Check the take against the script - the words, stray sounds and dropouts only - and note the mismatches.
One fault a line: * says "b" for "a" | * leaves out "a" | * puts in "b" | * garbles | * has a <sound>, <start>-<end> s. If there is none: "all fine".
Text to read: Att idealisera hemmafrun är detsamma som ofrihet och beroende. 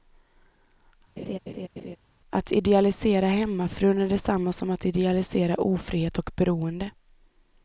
* has a laugh, 1.2-2.0 s
* puts in "att idealisera"